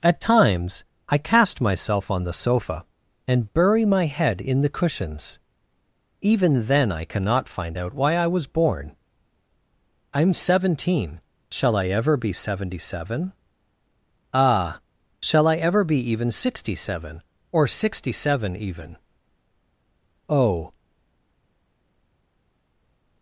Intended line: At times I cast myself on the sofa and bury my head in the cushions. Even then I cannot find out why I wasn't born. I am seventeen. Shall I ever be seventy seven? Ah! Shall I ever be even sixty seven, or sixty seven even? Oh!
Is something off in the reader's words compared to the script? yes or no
yes